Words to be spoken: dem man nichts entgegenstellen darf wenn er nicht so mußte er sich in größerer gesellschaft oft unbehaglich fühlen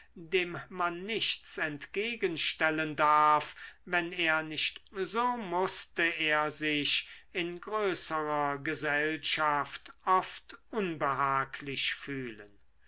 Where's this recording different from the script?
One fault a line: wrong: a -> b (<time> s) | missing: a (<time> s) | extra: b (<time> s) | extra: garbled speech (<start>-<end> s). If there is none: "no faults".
no faults